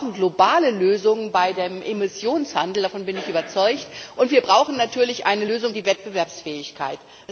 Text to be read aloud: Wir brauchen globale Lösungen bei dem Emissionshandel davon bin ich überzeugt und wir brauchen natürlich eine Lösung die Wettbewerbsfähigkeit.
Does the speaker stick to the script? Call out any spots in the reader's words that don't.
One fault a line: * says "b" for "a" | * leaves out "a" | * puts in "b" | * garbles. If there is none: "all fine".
all fine